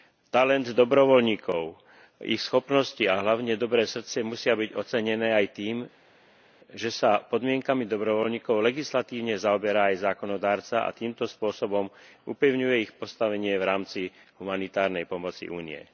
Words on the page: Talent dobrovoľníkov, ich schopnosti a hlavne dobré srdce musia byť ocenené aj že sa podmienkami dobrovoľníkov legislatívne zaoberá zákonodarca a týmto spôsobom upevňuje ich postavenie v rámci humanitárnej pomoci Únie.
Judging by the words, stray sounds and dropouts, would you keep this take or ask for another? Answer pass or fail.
fail